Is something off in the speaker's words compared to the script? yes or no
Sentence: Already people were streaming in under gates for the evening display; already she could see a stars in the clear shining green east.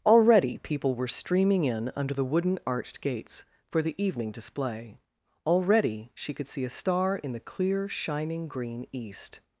yes